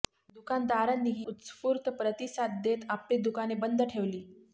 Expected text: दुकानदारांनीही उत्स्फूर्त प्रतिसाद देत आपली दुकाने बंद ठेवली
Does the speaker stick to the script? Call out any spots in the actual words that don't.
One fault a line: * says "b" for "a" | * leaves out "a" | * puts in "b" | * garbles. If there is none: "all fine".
all fine